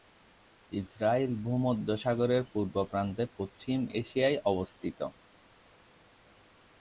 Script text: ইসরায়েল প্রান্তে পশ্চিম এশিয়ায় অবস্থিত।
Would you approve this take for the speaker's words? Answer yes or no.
no